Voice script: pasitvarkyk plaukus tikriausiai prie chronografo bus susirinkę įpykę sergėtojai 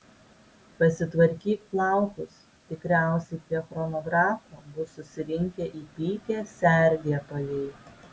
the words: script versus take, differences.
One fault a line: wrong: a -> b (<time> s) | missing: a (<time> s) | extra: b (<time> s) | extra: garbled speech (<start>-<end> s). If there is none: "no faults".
no faults